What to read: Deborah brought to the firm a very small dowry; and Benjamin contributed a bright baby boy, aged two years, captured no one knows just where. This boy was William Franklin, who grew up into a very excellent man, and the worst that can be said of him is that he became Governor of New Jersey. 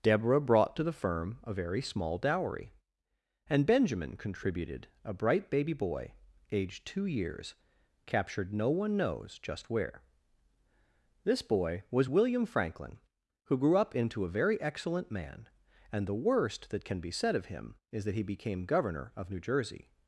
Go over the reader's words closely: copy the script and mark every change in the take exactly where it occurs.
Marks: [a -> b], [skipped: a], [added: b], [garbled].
Deborah brought to the firm a very small dowry; and Benjamin contributed a bright baby boy, aged two years, captured no one knows just where. This boy was William Franklin, who grew up into a very excellent man, and the worst that can be said of him is that he became Governor of New Jersey.